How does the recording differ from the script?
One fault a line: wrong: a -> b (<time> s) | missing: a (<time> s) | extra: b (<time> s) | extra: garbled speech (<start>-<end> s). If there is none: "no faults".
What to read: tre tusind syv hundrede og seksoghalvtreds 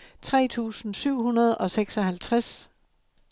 no faults